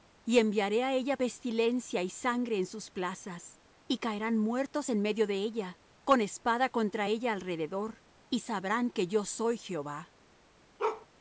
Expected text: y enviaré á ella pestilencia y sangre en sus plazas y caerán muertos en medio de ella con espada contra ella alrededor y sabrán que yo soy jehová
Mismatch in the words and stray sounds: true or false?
true